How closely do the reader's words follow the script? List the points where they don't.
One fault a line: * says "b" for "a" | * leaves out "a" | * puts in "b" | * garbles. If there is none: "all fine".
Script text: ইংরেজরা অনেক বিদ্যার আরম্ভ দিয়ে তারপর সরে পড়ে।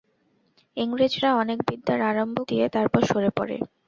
all fine